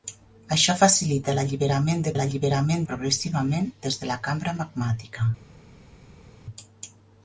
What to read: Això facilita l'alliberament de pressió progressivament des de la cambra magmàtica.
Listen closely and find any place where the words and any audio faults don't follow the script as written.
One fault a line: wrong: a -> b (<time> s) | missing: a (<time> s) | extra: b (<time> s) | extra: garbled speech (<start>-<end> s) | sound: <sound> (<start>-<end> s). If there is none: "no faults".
wrong: pressió -> l'alliberament (2.2 s)